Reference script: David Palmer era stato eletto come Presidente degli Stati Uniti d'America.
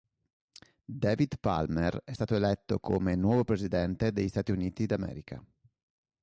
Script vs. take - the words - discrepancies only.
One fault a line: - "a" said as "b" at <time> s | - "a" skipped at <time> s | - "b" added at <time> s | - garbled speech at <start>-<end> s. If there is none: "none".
- "era" said as "è" at 2.0 s
- "nuovo" added at 3.2 s